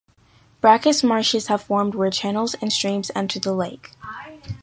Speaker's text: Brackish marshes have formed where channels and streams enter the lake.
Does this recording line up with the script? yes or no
yes